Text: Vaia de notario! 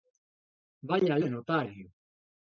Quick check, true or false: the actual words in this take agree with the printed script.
true